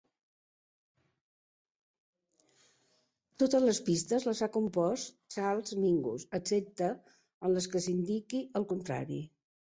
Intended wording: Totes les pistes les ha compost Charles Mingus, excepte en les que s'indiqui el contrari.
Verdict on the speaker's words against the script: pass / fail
pass